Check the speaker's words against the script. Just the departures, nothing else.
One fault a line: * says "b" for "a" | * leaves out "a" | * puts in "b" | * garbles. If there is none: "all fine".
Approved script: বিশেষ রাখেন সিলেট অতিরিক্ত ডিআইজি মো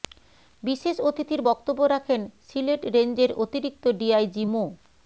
* puts in "অতিথির বক্তব্য"
* puts in "রেঞ্জের"